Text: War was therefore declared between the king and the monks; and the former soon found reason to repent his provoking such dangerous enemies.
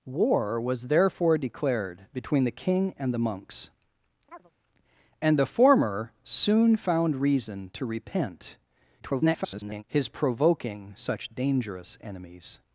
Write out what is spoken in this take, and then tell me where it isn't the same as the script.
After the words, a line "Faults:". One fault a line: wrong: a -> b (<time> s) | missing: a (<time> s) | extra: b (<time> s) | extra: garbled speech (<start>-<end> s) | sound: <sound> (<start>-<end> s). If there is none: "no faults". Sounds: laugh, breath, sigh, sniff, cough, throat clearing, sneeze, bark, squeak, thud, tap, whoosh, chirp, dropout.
War was therefore declared between the king and the monks; and the former soon found reason to repent [garbled] his provoking such dangerous enemies.
Faults:
sound: chirp (4.3-4.5 s)
extra: garbled speech (9.0-9.8 s)